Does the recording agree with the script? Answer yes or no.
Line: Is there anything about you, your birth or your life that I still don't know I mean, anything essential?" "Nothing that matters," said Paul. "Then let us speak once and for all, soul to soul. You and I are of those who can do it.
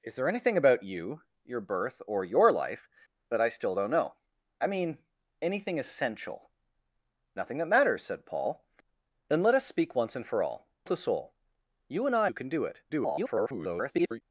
no